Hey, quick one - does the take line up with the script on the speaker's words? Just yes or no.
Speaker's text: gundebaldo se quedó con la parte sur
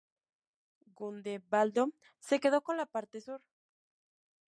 yes